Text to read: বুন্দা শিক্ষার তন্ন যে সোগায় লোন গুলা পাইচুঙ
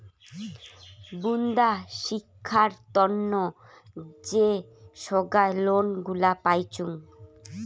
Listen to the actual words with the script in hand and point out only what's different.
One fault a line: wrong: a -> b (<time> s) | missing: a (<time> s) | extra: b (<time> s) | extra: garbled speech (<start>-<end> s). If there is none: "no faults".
no faults